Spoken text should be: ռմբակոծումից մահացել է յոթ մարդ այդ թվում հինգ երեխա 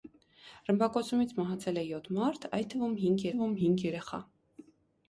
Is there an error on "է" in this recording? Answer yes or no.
no